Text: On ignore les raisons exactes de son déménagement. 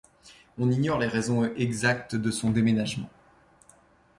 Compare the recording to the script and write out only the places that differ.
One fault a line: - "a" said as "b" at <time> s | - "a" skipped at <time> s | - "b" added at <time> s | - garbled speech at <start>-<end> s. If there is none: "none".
none